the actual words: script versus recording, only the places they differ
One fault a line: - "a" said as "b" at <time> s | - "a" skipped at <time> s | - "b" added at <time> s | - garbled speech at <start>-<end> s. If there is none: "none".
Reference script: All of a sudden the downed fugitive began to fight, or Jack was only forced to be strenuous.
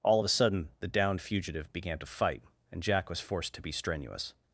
- "or" said as "and" at 2.7 s
- "only" skipped at 3.2 s